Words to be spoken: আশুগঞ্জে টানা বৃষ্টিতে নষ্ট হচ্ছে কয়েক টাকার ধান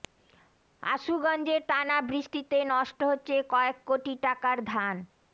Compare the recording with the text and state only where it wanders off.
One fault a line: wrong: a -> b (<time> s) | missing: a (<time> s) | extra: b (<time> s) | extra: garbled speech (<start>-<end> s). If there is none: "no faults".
extra: কোটি (3.9 s)